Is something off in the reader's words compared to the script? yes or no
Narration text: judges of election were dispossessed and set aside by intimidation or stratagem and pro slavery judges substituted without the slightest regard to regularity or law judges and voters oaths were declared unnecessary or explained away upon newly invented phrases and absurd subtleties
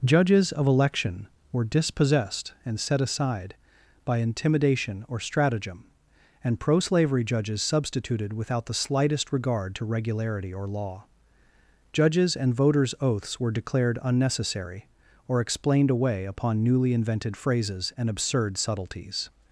no